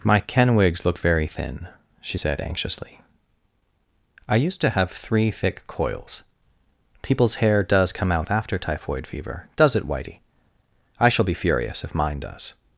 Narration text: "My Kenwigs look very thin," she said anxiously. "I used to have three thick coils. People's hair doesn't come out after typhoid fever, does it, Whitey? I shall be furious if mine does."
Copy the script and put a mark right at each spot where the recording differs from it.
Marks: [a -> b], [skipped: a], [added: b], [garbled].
"My Kenwigs look very thin," she said anxiously. "I used to have three thick coils. People's hair [doesn't -> does] come out after typhoid fever, does it, Whitey? I shall be furious if mine does."